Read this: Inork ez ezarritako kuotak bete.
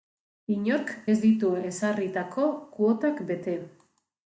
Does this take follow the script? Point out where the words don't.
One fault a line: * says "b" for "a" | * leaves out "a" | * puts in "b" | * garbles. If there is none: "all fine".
* puts in "ditu"